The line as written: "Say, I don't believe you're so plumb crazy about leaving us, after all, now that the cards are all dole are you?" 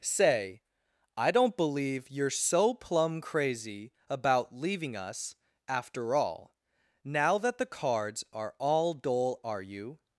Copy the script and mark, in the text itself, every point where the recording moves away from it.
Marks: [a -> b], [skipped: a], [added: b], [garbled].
"Say, I don't believe you're so plumb crazy about leaving us, after all, now that the cards are all dole are you?"